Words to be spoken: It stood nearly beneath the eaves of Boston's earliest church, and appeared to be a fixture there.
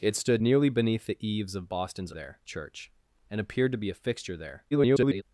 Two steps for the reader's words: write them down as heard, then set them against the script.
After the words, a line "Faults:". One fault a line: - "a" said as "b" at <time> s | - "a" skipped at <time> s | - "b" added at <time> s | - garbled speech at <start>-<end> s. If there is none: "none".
It stood nearly beneath the eaves of Boston's there church, and appeared to be a fixture there. [garbled]
Faults:
- "earliest" said as "there" at 2.1 s
- garbled speech at 4.7-5.2 s